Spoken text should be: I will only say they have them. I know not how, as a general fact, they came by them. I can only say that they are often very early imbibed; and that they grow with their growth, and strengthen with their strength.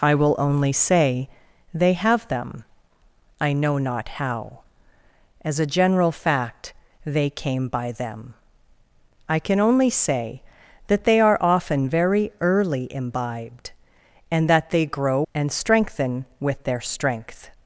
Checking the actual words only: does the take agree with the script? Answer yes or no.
no